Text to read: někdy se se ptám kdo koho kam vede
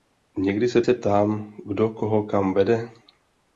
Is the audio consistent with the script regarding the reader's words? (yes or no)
yes